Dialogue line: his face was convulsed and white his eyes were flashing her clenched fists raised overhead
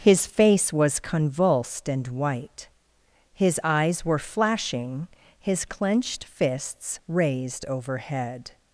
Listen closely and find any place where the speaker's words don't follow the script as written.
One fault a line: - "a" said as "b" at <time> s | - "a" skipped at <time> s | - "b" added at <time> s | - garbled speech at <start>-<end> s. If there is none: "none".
- "her" said as "his" at 5.4 s